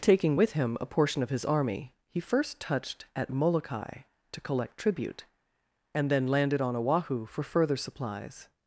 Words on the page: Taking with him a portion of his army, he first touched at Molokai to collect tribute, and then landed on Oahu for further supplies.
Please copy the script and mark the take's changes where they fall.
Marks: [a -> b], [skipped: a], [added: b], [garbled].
Taking with him a portion of his army, he first touched at Molokai to collect tribute, and then landed on Oahu for further supplies.